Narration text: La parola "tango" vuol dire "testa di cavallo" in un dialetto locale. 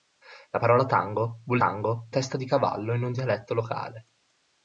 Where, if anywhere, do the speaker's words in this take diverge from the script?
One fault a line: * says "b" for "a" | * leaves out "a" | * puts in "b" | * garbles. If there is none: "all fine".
* says "tango" for "dire"